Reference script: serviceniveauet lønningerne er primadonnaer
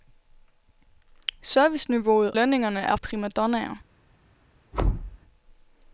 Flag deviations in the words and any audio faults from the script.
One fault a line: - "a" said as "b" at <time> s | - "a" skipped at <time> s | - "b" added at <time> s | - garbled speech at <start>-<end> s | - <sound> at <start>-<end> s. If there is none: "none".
- thud at 4.7-5.2 s